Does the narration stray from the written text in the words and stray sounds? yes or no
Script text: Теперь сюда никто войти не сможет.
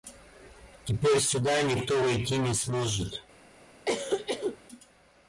yes